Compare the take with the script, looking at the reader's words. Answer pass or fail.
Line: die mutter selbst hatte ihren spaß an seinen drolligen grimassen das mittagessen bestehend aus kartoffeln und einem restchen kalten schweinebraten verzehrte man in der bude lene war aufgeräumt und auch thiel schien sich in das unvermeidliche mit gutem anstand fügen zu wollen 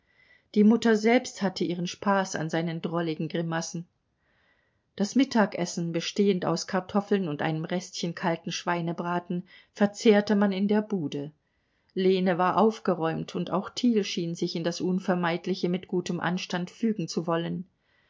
pass